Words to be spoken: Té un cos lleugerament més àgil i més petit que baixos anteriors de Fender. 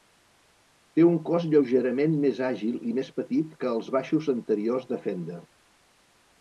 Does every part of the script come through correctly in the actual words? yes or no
no